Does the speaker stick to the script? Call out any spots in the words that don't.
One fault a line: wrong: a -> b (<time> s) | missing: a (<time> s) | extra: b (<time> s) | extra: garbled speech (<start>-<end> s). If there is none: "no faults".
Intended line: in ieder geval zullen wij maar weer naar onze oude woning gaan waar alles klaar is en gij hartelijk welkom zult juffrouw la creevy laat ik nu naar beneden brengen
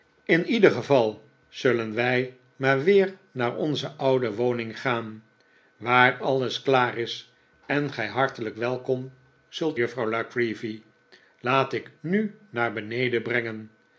no faults